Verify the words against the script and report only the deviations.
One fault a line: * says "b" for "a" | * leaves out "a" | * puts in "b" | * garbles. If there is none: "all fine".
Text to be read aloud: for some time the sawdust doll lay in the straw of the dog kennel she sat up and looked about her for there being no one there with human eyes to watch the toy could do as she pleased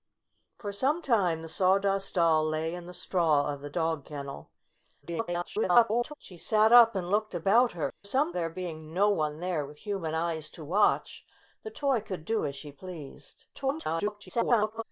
* garbles
* says "some" for "for"
* garbles